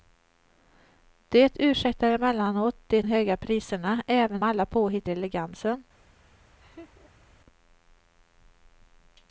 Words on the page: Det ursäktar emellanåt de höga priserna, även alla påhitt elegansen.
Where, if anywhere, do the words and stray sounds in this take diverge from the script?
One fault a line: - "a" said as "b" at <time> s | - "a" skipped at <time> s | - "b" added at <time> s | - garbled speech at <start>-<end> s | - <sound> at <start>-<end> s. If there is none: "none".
- laugh at 6.6-7.3 s